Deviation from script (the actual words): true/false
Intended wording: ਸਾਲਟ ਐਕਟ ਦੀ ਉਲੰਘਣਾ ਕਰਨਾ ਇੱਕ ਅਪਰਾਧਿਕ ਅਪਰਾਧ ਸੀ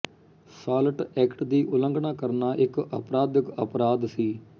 false